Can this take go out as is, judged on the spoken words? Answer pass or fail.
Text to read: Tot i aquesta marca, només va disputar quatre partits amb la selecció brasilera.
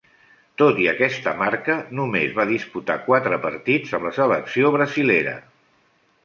pass